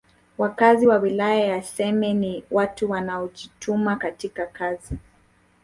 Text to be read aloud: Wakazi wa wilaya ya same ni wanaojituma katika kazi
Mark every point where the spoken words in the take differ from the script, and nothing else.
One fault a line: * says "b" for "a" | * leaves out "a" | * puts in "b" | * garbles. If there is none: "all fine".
* puts in "watu"